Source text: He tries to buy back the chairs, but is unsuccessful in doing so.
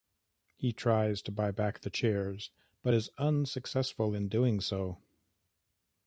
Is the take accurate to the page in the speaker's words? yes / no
yes